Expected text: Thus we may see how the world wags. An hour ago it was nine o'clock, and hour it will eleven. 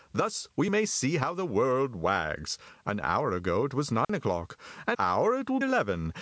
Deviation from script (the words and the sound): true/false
true